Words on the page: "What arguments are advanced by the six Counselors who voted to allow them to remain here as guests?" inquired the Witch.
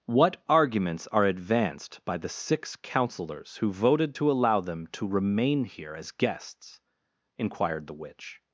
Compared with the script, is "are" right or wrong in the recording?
right